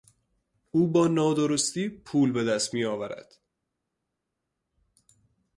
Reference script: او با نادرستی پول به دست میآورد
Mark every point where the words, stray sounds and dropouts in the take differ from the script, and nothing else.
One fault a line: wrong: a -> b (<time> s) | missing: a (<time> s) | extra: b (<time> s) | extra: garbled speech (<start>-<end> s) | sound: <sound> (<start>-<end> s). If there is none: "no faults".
no faults